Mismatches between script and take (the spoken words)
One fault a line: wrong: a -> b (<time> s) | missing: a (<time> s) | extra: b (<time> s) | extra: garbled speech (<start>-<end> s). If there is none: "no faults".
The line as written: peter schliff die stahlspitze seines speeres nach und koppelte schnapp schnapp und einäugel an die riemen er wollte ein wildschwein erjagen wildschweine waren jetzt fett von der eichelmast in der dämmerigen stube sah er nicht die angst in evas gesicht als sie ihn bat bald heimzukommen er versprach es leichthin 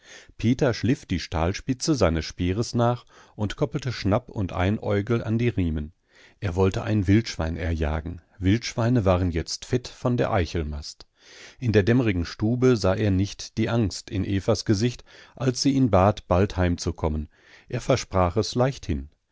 missing: schnapp (4.3 s)